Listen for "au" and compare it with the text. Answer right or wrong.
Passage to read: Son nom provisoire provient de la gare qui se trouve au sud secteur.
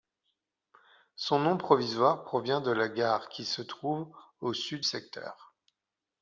right